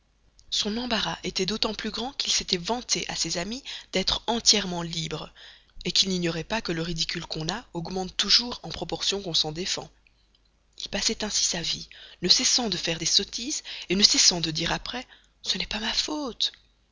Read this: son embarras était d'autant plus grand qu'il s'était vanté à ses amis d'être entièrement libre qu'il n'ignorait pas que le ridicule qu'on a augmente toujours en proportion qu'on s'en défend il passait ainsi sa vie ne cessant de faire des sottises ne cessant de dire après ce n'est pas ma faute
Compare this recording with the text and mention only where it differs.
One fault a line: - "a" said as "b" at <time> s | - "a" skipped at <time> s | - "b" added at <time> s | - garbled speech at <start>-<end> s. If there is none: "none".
none